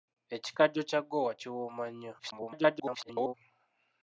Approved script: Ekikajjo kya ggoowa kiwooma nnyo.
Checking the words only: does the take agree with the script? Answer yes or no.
no